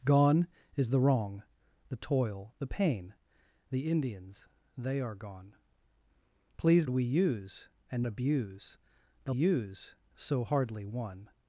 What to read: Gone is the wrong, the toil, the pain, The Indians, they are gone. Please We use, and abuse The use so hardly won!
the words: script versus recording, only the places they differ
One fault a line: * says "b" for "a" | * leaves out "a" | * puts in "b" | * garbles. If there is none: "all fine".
all fine